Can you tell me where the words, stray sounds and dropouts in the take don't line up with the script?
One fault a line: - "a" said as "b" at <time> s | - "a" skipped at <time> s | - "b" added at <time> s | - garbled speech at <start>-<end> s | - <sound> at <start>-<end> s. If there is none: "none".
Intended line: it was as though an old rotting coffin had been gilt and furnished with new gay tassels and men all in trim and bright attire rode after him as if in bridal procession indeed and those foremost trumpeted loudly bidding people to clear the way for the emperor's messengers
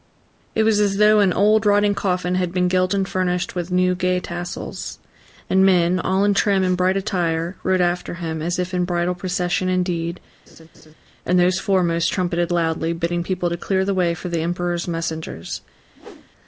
- laugh at 10.5-10.9 s
- whoosh at 15.9-16.3 s